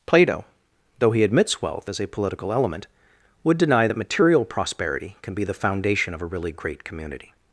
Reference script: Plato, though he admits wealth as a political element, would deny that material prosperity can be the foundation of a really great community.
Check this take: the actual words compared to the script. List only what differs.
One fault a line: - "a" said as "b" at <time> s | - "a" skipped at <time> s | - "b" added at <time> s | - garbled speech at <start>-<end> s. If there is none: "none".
none